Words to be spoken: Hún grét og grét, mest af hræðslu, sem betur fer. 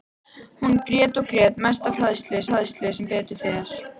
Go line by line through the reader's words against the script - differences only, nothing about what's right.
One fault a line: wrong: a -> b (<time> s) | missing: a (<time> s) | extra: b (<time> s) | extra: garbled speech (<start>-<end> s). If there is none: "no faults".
extra: hræðslu (2.5 s)